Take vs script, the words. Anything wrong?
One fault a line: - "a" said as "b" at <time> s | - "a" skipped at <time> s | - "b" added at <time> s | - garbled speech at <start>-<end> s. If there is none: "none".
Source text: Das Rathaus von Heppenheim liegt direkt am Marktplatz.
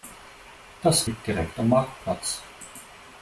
- "Rathaus von Heppenheim" skipped at 1.1 s